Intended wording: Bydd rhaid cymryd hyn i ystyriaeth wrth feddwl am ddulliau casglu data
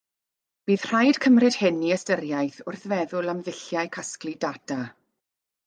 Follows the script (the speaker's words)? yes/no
yes